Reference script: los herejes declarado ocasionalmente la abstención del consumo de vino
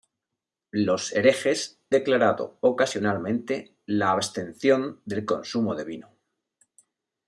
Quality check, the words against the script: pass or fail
pass